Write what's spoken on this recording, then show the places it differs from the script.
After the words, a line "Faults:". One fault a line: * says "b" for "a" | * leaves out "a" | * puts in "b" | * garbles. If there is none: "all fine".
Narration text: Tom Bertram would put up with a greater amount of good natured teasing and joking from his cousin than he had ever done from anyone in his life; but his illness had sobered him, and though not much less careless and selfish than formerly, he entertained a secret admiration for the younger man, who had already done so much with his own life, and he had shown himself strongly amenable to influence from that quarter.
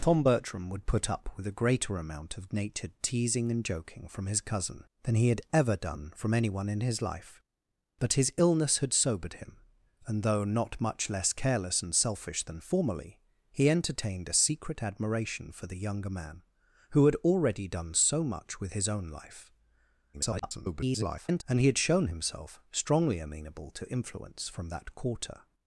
Tom Bertram would put up with a greater amount of natured teasing and joking from his cousin than he had ever done from anyone in his life; but his illness had sobered him, and though not much less careless and selfish than formerly, he entertained a secret admiration for the younger man, who had already done so much with his own life, [garbled] and he had shown himself strongly amenable to influence from that quarter.
Faults:
* leaves out "good"
* garbles